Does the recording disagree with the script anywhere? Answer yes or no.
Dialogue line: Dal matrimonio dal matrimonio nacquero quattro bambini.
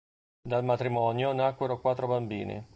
yes